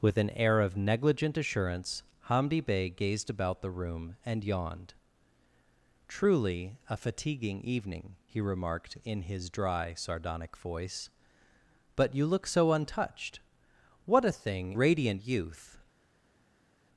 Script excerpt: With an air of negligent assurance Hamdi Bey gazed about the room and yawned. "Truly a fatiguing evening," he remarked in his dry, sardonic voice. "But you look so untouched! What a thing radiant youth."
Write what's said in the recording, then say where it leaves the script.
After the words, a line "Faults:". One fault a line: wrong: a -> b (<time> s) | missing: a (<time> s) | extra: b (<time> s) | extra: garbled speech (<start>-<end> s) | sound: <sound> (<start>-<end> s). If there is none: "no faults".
With an air of negligent assurance Hamdi Bey gazed about the room and yawned. "Truly a fatiguing evening," he remarked in his dry, sardonic voice. "But you look so untouched! What a thing radiant youth."
Faults:
no faults